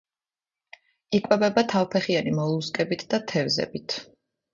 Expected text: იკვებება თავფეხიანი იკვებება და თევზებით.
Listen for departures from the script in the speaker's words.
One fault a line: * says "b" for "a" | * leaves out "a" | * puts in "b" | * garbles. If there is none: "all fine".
* says "მოლუსკებით" for "იკვებება"